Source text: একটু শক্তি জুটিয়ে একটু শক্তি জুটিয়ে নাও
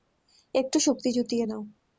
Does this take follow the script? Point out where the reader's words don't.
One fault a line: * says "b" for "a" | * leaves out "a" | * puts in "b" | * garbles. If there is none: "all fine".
* leaves out "একটু শক্তি জুটিয়ে"